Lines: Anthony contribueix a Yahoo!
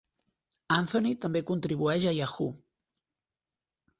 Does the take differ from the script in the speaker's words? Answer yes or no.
yes